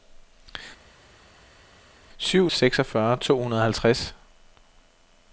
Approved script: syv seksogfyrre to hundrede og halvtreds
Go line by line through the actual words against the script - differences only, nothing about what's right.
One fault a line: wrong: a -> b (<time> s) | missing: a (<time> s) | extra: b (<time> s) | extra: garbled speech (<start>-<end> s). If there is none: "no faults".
no faults